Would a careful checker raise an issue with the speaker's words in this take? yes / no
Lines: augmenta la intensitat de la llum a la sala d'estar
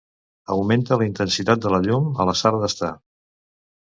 no